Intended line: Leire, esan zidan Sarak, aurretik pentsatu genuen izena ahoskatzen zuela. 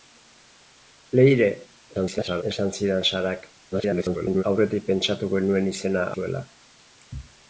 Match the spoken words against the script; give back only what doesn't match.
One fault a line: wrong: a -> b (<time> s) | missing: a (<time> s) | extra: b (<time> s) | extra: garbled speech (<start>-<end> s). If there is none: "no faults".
extra: garbled speech (1.9-2.4 s)
extra: garbled speech (3.7-4.4 s)
missing: ahoskatzen (6.1 s)